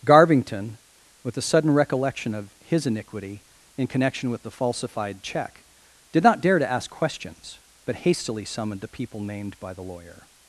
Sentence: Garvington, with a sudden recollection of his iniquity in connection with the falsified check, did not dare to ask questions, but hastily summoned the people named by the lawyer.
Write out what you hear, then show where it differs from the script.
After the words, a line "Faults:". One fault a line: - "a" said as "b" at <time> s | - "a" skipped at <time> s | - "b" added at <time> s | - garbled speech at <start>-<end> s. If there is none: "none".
Garvington, with a sudden recollection of his iniquity in connection with the falsified check, did not dare to ask questions, but hastily summoned the people named by the lawyer.
Faults:
none